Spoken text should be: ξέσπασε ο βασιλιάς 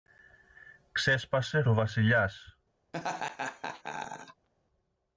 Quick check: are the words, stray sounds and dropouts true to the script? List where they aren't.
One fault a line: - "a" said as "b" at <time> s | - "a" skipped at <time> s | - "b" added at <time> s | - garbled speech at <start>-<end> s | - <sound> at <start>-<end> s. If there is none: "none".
- laugh at 2.9-4.5 s